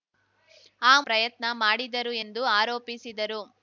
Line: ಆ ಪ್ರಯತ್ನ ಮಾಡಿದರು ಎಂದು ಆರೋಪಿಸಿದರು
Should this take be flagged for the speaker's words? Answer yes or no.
no